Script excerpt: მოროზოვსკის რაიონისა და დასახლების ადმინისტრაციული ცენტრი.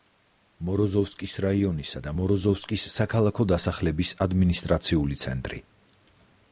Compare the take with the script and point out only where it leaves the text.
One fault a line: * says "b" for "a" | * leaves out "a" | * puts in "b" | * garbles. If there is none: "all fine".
* puts in "მოროზოვსკის საქალაქო"